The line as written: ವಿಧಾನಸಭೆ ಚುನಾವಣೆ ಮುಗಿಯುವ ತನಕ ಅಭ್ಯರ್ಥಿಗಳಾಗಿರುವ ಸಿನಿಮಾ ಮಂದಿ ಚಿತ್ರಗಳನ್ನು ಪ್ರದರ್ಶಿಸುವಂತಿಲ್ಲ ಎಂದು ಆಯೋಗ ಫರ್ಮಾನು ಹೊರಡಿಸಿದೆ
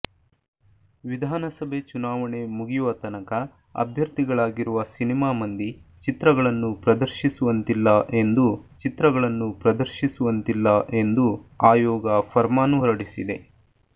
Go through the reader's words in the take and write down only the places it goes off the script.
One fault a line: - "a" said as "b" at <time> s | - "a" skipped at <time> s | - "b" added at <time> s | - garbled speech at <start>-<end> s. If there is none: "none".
- "ಚಿತ್ರಗಳನ್ನು ಪ್ರದರ್ಶಿಸುವಂತಿಲ್ಲ ಎಂದು" added at 8.8 s